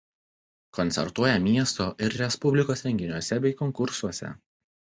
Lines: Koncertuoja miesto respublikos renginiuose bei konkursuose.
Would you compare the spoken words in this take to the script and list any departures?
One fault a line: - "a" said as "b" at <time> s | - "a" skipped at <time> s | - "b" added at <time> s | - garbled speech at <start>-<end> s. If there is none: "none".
- "ir" added at 2.1 s